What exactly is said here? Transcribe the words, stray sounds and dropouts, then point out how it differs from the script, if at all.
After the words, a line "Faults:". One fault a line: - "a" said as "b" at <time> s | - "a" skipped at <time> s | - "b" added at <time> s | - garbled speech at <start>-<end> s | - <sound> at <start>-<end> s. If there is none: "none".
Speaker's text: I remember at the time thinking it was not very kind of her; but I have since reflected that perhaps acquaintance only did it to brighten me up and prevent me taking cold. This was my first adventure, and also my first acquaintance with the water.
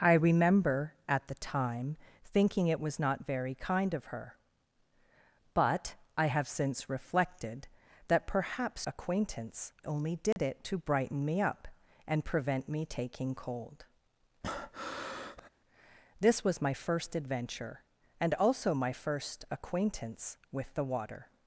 I remember at the time thinking it was not very kind of her; but I have since reflected that perhaps acquaintance only did it to brighten me up and prevent me taking cold. This was my first adventure, and also my first acquaintance with the water.
Faults:
- dropout at 10.3-10.4 s
- breath at 14.4-15.5 s